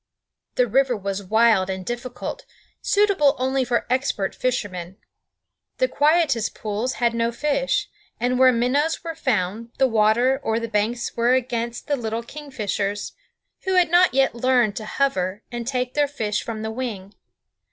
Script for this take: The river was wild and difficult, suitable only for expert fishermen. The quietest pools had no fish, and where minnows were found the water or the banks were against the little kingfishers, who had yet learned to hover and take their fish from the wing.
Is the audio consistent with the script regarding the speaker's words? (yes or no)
no